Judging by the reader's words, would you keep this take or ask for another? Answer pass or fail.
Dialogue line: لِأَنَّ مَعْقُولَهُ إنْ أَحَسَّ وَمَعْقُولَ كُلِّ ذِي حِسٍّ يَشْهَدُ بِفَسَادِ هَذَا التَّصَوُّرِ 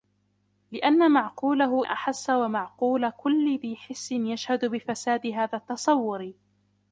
fail